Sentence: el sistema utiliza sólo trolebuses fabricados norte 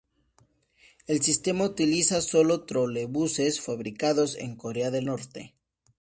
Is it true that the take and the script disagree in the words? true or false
true